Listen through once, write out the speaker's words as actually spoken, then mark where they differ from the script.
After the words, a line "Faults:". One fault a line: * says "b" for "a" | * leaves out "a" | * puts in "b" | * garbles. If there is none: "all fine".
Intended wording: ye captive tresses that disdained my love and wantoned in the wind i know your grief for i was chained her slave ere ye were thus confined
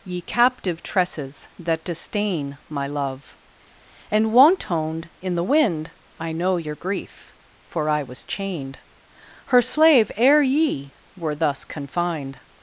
ye captive tresses that disdain my love and wantoned in the wind i know your grief for i was chained her slave ere ye were thus confined
Faults:
* says "disdain" for "disdained"